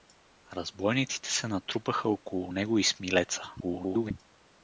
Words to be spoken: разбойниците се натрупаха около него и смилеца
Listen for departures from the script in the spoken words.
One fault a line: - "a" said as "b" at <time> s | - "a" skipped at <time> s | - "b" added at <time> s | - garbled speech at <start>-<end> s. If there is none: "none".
- garbled speech at 3.6-4.1 s